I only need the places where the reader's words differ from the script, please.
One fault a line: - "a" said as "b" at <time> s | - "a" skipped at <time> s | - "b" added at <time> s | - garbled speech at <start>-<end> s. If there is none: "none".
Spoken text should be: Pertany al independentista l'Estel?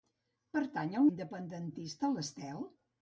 none